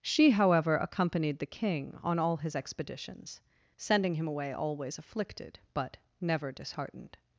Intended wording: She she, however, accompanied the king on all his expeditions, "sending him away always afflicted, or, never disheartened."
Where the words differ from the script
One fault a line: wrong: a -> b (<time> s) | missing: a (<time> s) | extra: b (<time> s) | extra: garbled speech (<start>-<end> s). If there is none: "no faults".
missing: she (0.3 s)
wrong: or -> but (5.7 s)